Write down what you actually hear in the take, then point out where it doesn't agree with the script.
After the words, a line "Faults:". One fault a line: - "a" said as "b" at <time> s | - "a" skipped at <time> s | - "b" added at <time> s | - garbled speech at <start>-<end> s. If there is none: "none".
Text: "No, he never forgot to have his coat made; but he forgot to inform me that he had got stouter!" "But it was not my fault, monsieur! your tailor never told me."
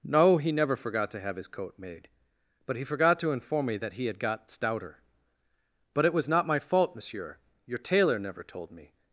"No, he never forgot to have his coat made; but he forgot to inform me that he had got stouter!" "But it was not my fault, monsieur! your tailor never told me."
Faults:
none